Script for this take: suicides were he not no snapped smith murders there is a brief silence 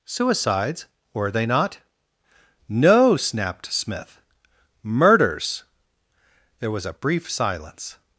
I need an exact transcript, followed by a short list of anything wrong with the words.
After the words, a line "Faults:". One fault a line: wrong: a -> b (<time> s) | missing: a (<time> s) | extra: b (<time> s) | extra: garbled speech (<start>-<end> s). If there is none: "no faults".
suicides were they not no snapped smith murders there was a brief silence
Faults:
wrong: he -> they (1.3 s)
wrong: is -> was (6.7 s)